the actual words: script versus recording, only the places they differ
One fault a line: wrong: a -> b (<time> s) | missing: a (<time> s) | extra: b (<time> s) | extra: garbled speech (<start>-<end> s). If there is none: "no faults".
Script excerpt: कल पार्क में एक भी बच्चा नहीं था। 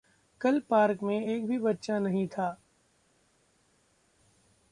no faults